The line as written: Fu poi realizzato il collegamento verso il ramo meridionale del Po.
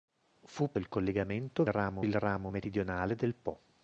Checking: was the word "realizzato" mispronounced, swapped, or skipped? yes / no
yes